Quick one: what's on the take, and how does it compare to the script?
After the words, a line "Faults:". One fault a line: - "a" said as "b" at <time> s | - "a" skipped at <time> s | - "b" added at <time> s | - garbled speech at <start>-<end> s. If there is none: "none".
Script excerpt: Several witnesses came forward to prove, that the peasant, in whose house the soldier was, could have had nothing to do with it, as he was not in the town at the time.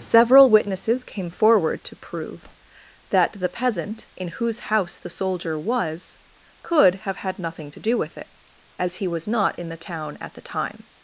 Several witnesses came forward to prove, that the peasant, in whose house the soldier was, could have had nothing to do with it, as he was not in the town at the time.
Faults:
none